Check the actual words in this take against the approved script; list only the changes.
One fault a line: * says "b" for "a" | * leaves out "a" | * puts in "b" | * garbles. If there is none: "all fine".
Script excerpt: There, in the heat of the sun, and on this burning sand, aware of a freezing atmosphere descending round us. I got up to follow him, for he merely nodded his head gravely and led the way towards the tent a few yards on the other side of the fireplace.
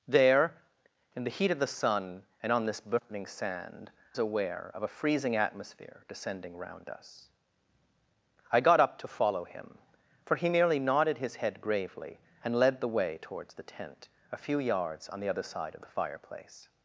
all fine